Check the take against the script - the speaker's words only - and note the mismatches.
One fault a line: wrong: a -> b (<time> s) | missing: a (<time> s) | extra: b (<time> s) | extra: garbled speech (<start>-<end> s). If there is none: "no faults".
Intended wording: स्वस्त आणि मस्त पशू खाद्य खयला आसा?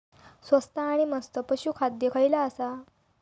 no faults